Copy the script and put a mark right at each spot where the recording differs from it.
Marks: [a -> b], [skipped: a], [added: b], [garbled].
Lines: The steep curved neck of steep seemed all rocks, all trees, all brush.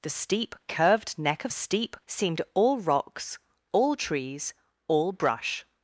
The steep curved neck of steep seemed all rocks, all trees, all brush.